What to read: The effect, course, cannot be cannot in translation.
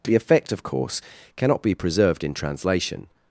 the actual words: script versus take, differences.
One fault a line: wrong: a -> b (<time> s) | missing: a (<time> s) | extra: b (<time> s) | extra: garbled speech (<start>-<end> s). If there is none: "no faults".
extra: of (0.5 s)
wrong: cannot -> preserved (1.8 s)